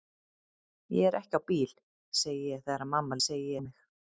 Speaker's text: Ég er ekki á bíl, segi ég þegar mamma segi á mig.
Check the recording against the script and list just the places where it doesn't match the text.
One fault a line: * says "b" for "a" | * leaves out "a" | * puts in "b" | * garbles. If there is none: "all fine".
all fine